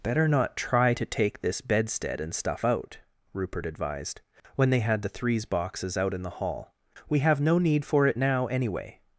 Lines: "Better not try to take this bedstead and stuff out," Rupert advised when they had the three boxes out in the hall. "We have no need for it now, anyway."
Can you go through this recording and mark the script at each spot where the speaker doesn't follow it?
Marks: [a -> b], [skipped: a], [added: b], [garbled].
"Better not try to take this bedstead and stuff out," Rupert advised when they had the [three -> threes] boxes out in the hall. "We have no need for it now, anyway."